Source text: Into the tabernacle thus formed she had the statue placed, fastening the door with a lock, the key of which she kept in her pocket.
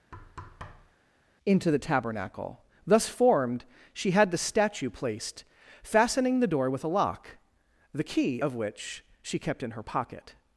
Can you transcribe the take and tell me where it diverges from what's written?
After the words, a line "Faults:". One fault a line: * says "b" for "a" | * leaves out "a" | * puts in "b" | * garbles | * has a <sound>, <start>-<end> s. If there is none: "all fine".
Into the tabernacle thus formed she had the statue placed, fastening the door with a lock, the key of which she kept in her pocket.
Faults:
* has a thud, 0.1-0.9 s